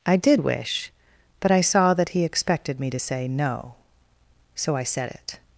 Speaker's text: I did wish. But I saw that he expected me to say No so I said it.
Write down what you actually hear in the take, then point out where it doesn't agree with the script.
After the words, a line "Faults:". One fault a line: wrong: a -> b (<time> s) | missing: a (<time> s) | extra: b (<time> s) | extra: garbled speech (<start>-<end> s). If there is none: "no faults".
I did wish. But I saw that he expected me to say No so I said it.
Faults:
no faults